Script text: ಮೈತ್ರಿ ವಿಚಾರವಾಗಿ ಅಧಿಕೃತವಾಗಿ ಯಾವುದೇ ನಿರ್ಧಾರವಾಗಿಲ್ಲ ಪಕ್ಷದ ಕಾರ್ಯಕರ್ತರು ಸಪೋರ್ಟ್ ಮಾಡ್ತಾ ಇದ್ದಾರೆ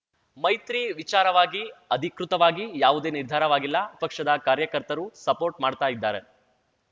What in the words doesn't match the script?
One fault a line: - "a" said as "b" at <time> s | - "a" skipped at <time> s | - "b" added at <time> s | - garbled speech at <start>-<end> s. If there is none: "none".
none